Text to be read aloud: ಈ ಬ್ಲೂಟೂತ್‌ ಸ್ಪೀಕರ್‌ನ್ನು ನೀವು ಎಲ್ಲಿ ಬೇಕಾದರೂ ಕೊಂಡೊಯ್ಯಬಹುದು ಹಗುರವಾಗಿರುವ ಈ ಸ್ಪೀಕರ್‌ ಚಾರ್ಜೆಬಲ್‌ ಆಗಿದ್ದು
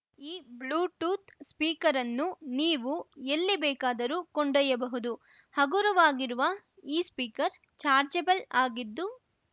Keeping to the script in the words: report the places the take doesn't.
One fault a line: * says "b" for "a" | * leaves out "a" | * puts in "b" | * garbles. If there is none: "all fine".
all fine